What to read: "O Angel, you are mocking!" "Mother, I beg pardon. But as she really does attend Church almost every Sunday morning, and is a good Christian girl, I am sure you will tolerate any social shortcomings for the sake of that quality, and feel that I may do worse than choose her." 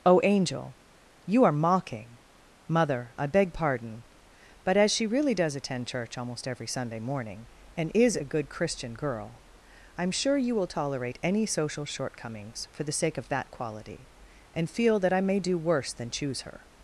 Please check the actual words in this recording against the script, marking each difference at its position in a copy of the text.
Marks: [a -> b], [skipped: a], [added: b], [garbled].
"O Angel, you are mocking!" "Mother, I beg pardon. But as she really does attend Church almost every Sunday morning, and is a good Christian girl, I am sure you will tolerate any social shortcomings for the sake of that quality, and feel that I may do worse than choose her."